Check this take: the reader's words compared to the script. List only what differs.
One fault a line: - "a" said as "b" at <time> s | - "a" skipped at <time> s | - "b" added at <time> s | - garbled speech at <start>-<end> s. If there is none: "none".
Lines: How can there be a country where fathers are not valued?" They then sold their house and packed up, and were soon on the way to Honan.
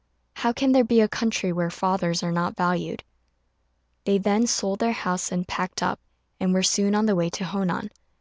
none